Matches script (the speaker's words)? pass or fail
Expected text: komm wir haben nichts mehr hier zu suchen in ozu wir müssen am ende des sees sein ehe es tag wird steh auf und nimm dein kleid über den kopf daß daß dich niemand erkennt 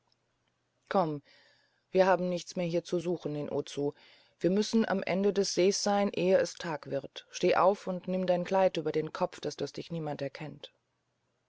pass